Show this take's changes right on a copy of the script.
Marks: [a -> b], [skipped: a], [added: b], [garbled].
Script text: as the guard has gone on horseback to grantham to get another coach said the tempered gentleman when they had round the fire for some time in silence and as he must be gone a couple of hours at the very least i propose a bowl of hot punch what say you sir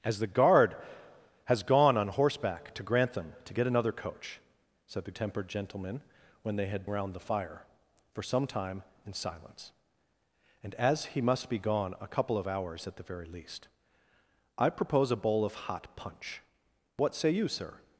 as the guard has gone on horseback to grantham to get another coach said the tempered gentleman when they had round the fire for some time in silence and as he must be gone a couple of hours at the very least i propose a bowl of hot punch what say you sir